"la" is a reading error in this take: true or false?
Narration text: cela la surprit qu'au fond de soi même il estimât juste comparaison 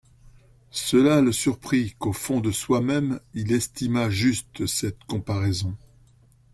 true